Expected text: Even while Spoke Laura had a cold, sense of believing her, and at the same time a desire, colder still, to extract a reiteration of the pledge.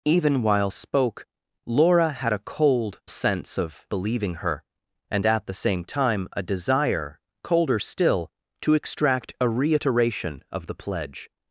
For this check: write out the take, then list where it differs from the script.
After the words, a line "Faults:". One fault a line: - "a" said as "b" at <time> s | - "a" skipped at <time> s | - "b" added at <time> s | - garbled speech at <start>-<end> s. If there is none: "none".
Even while Spoke Laura had a cold, sense of believing her, and at the same time a desire, colder still, to extract a reiteration of the pledge.
Faults:
none